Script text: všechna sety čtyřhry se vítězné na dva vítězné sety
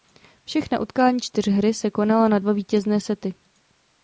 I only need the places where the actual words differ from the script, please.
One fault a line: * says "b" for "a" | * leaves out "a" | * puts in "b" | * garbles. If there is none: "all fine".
* says "utkání" for "sety"
* says "konala" for "vítězné"